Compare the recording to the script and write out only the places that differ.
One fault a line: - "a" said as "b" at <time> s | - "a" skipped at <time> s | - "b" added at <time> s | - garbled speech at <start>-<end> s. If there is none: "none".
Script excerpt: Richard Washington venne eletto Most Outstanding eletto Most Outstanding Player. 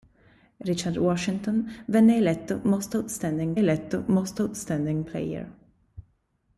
none